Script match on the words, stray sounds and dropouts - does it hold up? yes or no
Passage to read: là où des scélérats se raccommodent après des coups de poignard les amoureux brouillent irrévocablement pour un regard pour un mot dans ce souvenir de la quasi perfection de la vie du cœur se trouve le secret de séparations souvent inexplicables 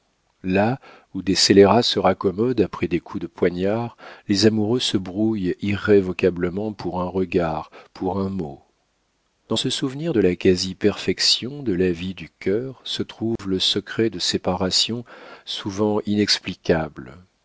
no